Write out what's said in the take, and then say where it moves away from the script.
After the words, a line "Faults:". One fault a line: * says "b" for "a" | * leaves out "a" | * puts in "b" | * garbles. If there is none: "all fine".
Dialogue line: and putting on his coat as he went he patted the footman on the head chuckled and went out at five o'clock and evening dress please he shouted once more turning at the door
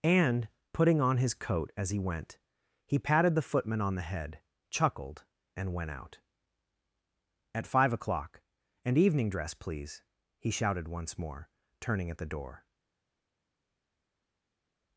and putting on his coat as he went he patted the footman on the head chuckled and went out at five o'clock and evening dress please he shouted once more turning at the door
Faults:
all fine